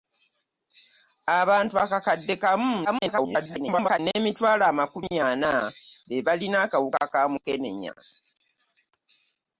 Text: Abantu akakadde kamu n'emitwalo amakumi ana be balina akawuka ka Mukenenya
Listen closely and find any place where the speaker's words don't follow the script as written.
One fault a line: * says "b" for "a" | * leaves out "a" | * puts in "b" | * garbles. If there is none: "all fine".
* garbles